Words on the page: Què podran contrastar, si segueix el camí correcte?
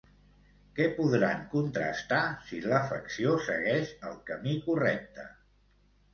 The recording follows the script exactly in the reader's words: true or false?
false